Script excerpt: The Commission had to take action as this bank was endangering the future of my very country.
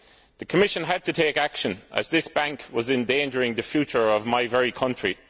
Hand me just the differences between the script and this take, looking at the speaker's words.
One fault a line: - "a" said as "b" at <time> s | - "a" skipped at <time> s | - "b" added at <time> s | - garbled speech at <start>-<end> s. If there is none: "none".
none